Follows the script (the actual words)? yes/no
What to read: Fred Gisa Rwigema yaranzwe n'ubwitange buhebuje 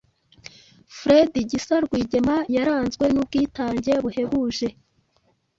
yes